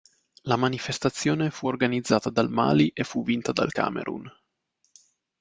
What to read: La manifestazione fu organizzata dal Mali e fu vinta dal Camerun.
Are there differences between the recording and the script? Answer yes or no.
no